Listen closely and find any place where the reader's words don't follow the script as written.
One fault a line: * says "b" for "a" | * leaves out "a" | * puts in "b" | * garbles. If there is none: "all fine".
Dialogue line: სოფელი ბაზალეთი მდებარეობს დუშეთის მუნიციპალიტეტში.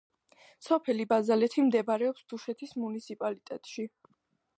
all fine